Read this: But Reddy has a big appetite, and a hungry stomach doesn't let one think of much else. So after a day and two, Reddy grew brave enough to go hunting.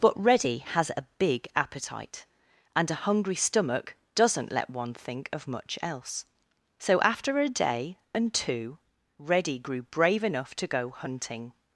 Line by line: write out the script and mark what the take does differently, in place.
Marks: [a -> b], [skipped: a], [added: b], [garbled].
But Reddy has a big appetite, and a hungry stomach doesn't let one think of much else. So after a day and two, Reddy grew brave enough to go hunting.